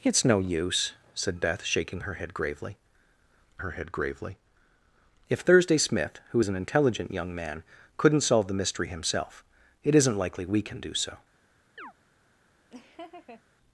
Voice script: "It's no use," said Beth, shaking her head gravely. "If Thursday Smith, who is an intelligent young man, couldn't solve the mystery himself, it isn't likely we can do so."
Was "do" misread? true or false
false